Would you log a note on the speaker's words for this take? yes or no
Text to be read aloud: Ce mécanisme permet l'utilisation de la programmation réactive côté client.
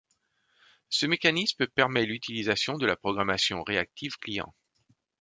yes